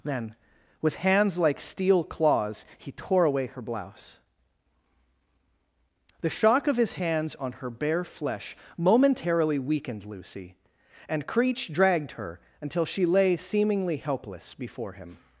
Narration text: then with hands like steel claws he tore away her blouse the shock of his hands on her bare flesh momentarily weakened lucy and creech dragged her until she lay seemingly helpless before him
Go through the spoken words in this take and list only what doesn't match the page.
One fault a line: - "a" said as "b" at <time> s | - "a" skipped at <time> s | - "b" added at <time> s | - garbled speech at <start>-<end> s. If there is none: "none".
none